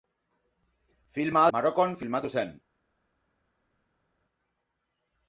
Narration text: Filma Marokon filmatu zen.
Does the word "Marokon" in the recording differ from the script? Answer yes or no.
no